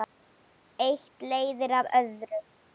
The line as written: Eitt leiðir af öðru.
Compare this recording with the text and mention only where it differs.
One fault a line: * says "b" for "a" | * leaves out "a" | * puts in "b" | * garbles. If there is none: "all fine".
all fine